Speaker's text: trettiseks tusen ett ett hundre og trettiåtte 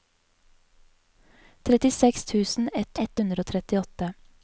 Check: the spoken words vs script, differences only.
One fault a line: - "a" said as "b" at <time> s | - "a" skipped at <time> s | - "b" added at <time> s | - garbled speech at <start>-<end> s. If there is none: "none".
none